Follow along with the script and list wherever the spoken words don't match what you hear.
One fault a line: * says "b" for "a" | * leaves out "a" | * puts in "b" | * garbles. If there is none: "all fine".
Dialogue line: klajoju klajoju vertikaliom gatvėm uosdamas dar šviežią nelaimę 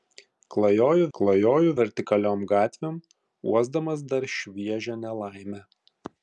all fine